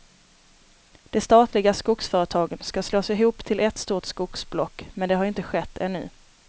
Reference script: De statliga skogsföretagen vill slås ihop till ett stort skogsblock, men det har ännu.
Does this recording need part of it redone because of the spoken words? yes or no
yes